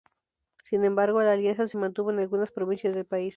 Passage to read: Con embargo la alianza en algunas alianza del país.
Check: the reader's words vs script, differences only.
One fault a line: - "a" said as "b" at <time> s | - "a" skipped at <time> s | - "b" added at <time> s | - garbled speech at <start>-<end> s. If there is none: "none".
- "Con" said as "Sin" at 0.6 s
- "se mantuvo" added at 1.7 s
- "alianza" said as "provincias" at 2.5 s